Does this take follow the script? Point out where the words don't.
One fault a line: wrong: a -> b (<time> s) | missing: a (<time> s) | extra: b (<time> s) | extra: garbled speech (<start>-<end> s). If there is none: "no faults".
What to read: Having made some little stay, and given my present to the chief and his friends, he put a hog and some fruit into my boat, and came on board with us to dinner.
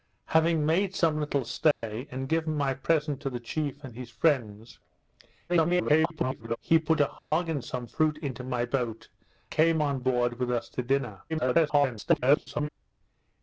extra: garbled speech (5.5-6.6 s)
missing: and (9.1 s)
extra: garbled speech (11.3-12.7 s)